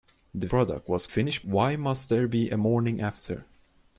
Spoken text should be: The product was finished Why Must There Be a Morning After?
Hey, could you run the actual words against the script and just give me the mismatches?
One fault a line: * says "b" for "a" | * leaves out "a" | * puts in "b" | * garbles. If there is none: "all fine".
all fine